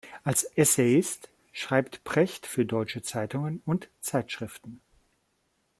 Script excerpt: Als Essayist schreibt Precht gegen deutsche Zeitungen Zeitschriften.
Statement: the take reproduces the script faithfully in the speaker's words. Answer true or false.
false